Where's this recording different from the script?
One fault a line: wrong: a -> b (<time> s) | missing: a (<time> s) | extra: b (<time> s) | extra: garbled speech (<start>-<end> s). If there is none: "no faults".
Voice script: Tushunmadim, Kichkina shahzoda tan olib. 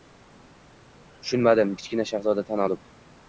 no faults